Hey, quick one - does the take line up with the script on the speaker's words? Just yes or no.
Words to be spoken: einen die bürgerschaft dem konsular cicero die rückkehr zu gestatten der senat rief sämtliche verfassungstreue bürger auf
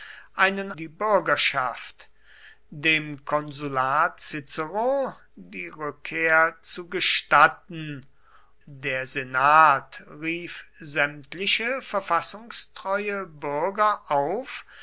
yes